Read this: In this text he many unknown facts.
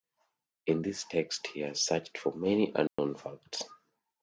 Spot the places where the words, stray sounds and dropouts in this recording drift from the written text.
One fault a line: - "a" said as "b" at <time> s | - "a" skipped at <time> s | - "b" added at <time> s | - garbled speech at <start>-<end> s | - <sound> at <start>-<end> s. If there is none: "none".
- "has searched for" added at 1.6 s
- dropout at 2.9-3.0 s